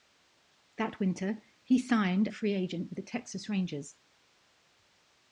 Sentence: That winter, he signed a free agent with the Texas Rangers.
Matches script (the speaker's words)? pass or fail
pass